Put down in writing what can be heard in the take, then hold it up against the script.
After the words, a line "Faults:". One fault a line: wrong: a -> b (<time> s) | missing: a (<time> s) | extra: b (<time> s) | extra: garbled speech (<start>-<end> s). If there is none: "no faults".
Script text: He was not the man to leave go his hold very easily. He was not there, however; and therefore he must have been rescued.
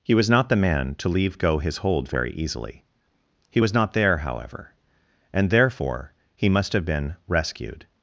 He was not the man to leave go his hold very easily. He was not there, however; and therefore he must have been rescued.
Faults:
no faults